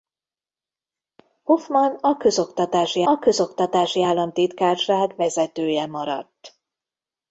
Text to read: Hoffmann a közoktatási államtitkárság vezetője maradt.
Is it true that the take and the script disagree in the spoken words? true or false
true